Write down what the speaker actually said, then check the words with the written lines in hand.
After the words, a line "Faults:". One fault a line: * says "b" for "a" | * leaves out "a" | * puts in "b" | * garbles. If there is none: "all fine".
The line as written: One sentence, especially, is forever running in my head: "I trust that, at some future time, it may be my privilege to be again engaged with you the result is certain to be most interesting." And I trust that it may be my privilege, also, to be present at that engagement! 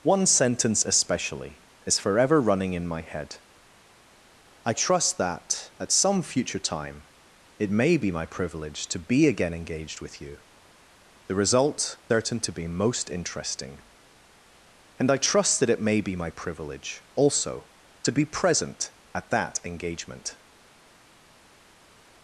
One sentence, especially, is forever running in my head: "I trust that, at some future time, it may be my privilege to be again engaged with you the result certain to be most interesting." And I trust that it may be my privilege, also, to be present at that engagement!
Faults:
* leaves out "is"